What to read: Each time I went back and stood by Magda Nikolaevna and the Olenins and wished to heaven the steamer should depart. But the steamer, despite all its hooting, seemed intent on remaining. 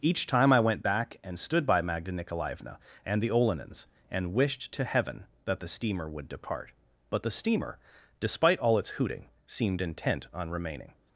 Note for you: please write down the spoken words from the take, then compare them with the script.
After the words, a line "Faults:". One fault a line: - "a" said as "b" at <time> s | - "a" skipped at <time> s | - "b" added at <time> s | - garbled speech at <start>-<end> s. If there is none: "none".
Each time I went back and stood by Magda Nikolaevna and the Olenins and wished to heaven that the steamer would depart. But the steamer, despite all its hooting, seemed intent on remaining.
Faults:
- "that" added at 5.5 s
- "should" said as "would" at 6.1 s